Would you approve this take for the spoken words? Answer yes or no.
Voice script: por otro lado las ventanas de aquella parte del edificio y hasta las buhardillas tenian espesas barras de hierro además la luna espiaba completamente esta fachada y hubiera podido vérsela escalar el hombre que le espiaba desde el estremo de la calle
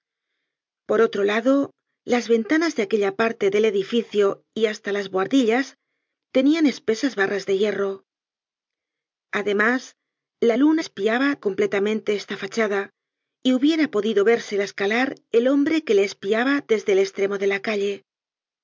yes